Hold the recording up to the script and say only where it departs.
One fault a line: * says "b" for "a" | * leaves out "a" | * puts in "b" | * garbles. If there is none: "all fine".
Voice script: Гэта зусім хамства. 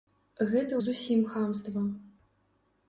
all fine